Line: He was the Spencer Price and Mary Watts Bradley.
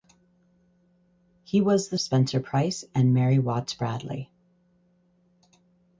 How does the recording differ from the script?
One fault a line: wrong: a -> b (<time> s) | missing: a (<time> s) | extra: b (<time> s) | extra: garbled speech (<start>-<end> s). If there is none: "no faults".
no faults